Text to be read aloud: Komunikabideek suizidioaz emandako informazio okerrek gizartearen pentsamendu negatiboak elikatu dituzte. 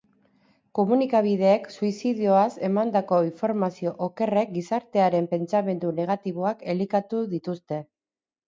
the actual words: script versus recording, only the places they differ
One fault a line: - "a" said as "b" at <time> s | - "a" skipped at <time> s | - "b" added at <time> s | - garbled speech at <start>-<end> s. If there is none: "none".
none